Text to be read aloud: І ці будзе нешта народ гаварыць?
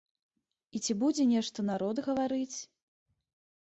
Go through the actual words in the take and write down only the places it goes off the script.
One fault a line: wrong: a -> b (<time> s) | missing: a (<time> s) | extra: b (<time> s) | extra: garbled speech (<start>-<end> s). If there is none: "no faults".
no faults